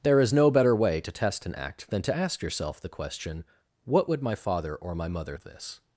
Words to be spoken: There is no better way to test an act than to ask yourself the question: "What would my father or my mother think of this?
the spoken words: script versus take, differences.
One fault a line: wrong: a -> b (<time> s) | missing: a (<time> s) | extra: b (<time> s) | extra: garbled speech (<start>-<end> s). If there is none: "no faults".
missing: think (5.3 s)